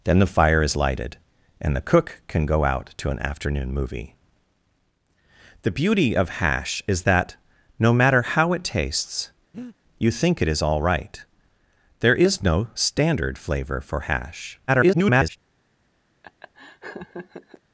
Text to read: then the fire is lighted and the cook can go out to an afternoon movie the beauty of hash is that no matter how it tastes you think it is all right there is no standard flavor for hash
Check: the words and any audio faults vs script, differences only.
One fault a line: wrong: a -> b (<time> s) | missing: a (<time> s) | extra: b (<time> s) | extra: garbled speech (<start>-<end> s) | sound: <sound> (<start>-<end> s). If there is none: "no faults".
sound: breath (9.5-9.8 s)
extra: garbled speech (14.7-15.4 s)
sound: laugh (16.2-17.6 s)